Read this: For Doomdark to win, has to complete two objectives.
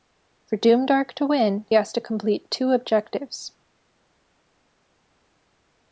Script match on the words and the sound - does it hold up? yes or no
yes